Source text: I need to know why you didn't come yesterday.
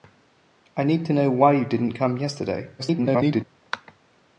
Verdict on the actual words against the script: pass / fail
fail